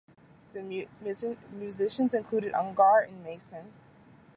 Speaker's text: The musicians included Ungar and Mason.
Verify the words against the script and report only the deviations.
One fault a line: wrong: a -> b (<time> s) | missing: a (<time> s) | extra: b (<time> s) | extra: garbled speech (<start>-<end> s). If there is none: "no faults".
no faults